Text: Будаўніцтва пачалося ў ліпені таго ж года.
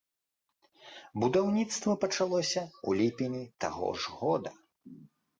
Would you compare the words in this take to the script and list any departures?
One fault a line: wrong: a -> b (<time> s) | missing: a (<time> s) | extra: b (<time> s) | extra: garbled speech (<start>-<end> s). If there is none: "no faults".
no faults